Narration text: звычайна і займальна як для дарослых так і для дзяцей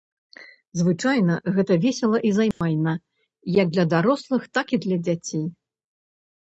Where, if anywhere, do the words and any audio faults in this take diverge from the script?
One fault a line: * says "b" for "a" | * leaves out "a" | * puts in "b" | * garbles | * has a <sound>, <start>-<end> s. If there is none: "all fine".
* puts in "гэта весела"
* has a dropout, 2.5-2.6 s